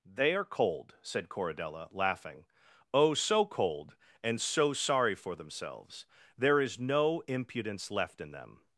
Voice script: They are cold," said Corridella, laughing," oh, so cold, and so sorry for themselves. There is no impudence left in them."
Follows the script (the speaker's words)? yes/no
yes